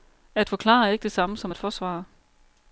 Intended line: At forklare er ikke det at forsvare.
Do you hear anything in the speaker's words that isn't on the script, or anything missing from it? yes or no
yes